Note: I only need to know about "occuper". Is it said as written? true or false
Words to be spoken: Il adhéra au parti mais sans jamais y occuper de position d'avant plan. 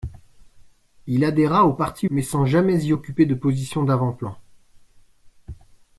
true